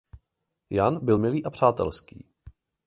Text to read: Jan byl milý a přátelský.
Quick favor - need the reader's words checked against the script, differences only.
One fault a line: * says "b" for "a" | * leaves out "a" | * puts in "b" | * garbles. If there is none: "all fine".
all fine